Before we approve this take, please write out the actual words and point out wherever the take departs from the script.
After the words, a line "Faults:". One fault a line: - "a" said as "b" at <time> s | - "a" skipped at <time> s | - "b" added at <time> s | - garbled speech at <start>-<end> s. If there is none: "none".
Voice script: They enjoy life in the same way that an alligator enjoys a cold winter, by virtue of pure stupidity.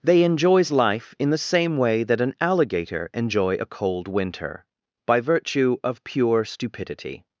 They enjoys life in the same way that an alligator enjoy a cold winter, by virtue of pure stupidity.
Faults:
- "enjoy" said as "enjoys" at 0.2 s
- "enjoys" said as "enjoy" at 3.1 s